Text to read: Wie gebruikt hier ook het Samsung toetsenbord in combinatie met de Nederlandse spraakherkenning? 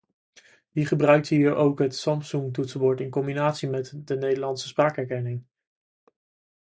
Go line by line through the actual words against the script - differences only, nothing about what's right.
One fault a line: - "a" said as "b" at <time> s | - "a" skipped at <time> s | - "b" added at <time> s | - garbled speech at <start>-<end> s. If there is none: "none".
none